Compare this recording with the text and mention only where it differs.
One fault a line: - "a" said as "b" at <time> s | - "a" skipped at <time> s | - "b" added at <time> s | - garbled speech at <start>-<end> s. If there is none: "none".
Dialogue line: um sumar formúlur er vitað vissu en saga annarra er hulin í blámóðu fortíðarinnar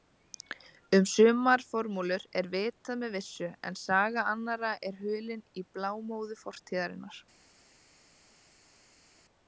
- "með" added at 3.0 s